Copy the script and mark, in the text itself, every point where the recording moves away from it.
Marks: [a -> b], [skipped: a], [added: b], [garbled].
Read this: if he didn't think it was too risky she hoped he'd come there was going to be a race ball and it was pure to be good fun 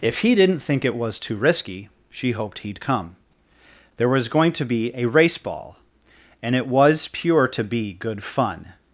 if he didn't think it was too risky she hoped he'd come there was going to be a race ball and it was pure to be good fun